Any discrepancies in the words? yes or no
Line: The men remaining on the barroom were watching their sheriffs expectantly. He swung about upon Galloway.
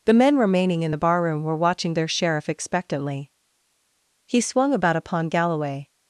yes